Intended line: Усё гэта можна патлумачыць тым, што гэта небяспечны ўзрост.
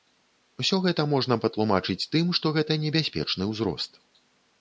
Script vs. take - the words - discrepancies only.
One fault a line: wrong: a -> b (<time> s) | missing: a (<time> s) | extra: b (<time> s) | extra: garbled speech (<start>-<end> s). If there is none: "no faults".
no faults